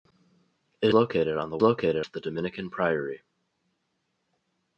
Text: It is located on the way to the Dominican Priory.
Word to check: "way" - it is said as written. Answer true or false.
false